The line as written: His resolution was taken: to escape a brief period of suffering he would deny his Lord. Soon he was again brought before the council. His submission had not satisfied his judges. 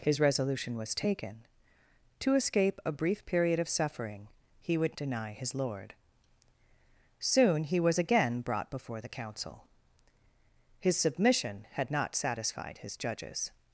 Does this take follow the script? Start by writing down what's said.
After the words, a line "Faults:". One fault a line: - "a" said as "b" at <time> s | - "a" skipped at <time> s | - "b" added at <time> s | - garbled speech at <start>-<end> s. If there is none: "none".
His resolution was taken: to escape a brief period of suffering he would deny his Lord. Soon he was again brought before the council. His submission had not satisfied his judges.
Faults:
none